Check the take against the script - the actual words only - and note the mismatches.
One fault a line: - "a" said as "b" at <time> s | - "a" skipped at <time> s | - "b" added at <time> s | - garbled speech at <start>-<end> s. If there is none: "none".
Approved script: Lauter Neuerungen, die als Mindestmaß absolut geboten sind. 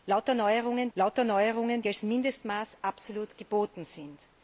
- "lauter Neuerungen" added at 0.9 s